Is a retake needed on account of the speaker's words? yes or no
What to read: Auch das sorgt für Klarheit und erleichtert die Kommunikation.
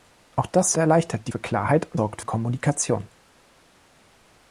yes